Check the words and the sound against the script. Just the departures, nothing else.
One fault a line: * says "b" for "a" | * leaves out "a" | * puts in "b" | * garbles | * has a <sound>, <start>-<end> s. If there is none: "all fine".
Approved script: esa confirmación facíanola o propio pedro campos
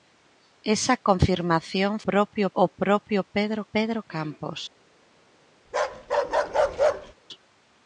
* says "propio" for "facíanola"
* puts in "pedro"
* has a bark, 5.7-7.1 s